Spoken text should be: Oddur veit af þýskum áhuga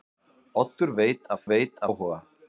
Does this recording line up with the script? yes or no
no